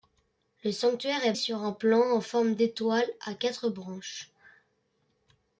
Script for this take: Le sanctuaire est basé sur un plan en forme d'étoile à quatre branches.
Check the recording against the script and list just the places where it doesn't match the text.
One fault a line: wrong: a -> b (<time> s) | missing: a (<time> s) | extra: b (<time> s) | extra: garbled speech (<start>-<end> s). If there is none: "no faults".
missing: basé (1.3 s)